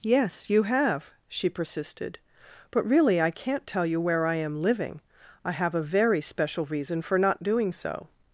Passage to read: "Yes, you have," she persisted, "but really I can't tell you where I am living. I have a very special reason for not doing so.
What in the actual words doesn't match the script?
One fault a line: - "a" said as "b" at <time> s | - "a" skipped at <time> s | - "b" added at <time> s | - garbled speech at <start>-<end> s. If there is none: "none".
none